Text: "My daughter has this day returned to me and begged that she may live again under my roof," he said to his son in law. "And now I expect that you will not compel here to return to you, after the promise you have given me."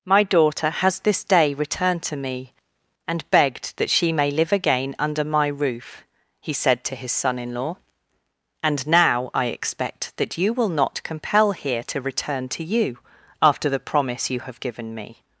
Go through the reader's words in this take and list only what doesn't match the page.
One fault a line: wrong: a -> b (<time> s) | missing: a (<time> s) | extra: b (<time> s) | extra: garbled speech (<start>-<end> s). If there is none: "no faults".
no faults